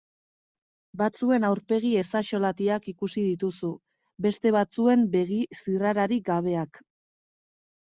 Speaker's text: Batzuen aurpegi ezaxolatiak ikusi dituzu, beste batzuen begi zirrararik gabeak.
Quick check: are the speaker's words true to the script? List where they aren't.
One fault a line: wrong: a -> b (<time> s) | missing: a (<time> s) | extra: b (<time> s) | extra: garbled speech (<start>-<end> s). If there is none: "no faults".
no faults